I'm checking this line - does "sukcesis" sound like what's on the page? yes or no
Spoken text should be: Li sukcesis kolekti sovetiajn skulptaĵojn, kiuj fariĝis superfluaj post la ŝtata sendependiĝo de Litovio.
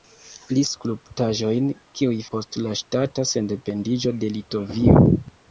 no